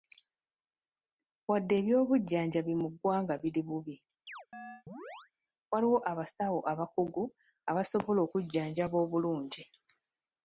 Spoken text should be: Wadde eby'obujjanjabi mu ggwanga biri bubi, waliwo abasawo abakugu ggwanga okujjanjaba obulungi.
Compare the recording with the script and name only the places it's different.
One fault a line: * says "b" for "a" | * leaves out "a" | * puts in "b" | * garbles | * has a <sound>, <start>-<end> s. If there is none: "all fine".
* has a chirp, 4.3-5.3 s
* says "abasobola" for "ggwanga"